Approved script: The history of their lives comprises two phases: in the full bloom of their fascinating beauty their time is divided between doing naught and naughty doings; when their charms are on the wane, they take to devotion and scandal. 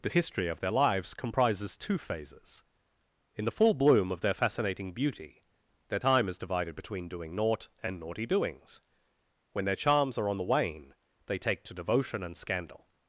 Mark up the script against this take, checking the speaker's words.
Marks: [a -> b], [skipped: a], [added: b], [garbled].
The history of their lives comprises two phases: in the full bloom of their fascinating beauty their time is divided between doing naught and naughty doings; when their charms are on the wane, they take to devotion and scandal.